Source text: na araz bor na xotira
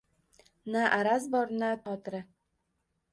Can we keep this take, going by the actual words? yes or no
yes